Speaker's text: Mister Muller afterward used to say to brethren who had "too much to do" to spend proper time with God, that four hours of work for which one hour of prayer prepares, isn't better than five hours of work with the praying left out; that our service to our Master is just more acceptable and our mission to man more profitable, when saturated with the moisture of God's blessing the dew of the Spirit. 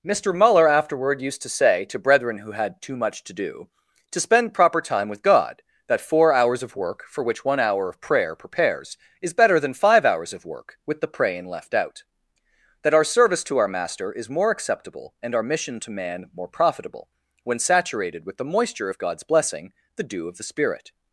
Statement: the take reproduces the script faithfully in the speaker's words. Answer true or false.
false